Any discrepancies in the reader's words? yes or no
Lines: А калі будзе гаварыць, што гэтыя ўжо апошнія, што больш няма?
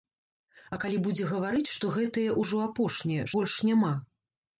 yes